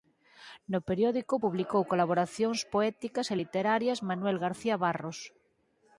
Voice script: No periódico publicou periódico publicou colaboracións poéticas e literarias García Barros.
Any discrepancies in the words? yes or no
yes